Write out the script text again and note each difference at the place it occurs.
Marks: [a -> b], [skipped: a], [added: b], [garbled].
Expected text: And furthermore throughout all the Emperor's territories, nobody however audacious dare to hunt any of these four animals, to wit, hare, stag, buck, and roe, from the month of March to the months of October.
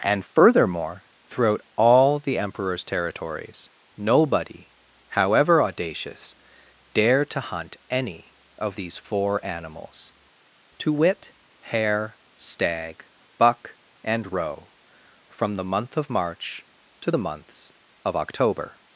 And furthermore throughout all the Emperor's territories, nobody however audacious dare to hunt any of these four animals, to wit, hare, stag, buck, and roe, from the month of March to the months of October.